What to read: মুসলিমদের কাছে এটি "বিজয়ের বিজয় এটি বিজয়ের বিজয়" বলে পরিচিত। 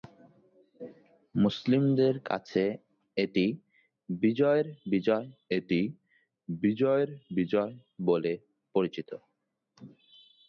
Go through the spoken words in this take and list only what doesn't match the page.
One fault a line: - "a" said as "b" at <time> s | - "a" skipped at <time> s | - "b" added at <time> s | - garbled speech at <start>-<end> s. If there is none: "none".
none